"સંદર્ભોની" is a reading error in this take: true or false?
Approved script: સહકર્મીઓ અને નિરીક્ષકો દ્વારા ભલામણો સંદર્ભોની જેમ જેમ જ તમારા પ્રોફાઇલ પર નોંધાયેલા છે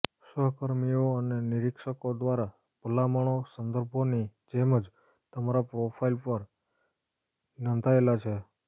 false